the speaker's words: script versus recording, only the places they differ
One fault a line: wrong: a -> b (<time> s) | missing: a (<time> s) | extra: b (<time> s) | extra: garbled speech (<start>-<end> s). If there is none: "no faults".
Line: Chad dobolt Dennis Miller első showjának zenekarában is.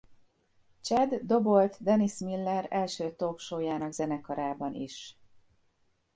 extra: talk (3.1 s)